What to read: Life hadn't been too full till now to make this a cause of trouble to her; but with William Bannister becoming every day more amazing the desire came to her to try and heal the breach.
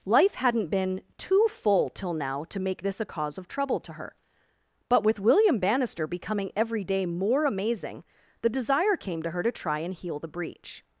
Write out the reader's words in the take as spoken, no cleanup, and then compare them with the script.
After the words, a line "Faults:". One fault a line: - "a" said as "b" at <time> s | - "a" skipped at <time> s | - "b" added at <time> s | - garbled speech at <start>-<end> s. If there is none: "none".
Life hadn't been too full till now to make this a cause of trouble to her; but with William Bannister becoming every day more amazing the desire came to her to try and heal the breach.
Faults:
none